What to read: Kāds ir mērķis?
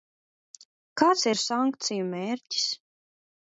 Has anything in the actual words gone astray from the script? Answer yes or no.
yes